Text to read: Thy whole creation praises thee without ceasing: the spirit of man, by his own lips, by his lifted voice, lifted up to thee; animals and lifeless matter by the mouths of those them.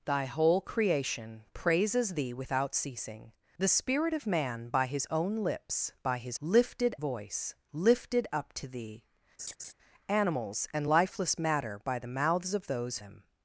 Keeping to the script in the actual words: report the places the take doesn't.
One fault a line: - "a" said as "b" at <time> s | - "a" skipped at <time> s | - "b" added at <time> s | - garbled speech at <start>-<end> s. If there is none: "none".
none